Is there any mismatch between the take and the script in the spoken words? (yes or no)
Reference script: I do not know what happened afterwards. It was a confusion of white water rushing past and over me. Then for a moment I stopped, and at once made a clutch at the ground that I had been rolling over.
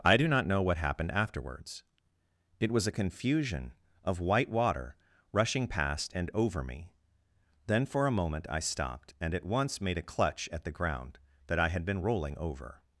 no